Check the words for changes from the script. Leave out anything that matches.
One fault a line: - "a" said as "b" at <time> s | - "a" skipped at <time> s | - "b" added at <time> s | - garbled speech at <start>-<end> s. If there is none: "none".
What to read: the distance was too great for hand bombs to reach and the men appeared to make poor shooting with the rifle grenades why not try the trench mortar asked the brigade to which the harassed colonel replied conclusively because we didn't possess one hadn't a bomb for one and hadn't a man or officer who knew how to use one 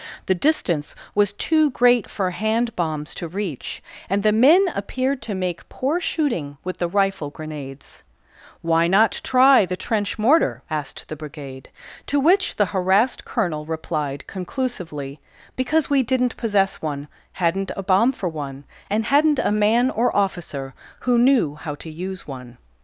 none